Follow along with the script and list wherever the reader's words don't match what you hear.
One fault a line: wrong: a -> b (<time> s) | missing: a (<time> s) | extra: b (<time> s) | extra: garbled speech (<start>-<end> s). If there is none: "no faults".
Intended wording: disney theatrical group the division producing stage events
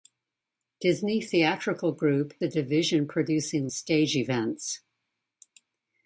no faults